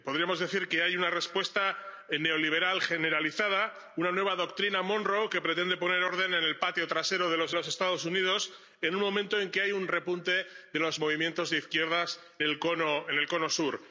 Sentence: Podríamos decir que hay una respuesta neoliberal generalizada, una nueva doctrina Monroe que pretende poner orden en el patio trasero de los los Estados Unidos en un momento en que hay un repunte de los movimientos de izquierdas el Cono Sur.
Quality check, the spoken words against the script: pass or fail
pass